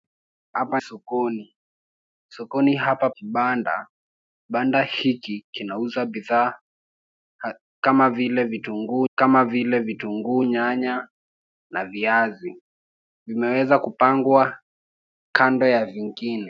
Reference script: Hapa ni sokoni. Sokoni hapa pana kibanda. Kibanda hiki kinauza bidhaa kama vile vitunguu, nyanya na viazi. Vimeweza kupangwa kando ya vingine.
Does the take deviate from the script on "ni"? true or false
true